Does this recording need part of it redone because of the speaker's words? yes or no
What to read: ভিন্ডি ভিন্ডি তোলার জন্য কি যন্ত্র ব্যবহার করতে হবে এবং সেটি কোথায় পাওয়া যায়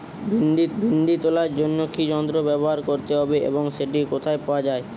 no